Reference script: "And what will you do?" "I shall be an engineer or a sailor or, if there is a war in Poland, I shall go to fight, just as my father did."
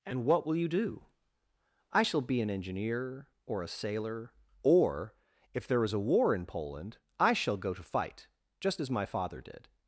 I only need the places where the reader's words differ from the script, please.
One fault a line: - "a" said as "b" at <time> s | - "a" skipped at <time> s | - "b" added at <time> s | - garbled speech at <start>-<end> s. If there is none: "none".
none